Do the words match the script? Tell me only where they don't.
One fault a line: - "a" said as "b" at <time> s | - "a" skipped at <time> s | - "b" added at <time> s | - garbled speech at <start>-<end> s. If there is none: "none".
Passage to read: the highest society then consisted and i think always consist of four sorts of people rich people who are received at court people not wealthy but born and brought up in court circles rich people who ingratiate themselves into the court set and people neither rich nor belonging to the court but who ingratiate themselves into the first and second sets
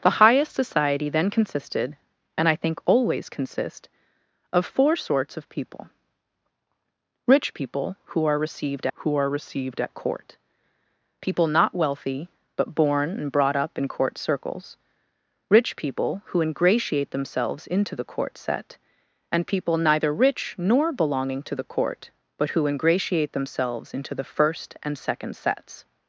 - "who are received" added at 8.9 s